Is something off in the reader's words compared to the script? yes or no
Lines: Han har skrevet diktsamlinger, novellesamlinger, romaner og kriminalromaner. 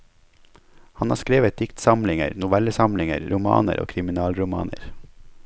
no